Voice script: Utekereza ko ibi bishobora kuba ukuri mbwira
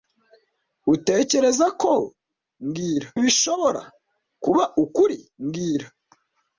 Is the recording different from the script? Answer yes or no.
yes